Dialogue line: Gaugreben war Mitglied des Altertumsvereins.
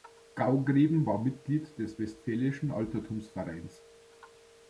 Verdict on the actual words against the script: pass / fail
fail